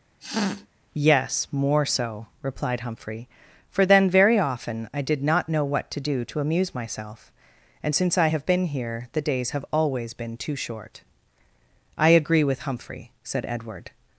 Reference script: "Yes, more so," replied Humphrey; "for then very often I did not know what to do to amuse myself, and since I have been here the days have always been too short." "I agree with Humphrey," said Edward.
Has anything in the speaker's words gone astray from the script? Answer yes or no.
no